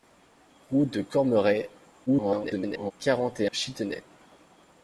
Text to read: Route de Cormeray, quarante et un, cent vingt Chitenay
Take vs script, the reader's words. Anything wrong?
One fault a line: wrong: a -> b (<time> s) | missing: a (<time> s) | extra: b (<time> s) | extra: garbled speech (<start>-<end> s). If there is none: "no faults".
extra: garbled speech (2.1-2.9 s)
missing: un cent vingt (3.5 s)